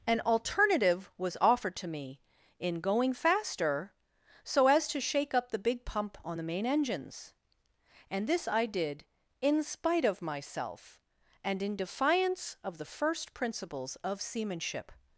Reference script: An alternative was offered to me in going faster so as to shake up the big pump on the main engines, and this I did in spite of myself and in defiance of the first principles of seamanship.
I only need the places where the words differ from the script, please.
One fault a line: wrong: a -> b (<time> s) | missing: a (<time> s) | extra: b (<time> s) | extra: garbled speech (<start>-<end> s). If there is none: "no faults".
no faults